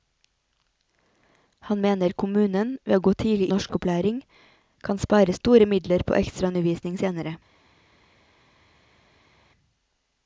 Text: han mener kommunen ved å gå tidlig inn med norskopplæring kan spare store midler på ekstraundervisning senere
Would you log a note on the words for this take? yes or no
yes